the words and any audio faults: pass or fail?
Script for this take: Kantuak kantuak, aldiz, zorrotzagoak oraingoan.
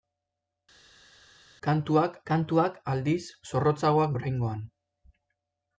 pass